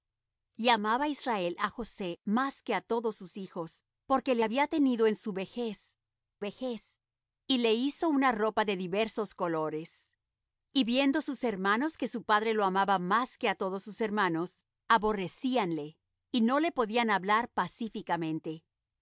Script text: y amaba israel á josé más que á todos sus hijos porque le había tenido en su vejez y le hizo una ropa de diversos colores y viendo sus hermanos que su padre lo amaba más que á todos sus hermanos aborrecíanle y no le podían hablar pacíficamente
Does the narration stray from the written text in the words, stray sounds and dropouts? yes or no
yes